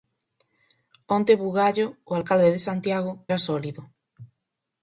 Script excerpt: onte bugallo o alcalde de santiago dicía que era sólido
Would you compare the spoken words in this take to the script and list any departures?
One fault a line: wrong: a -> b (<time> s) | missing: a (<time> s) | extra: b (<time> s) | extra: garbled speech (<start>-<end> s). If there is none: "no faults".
missing: dicía que (3.1 s)